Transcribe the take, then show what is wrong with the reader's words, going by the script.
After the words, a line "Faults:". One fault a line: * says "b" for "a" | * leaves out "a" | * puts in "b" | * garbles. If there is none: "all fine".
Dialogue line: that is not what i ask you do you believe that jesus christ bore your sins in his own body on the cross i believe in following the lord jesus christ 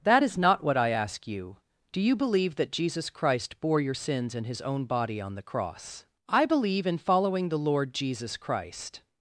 that is not what i ask you do you believe that jesus christ bore your sins in his own body on the cross i believe in following the lord jesus christ
Faults:
all fine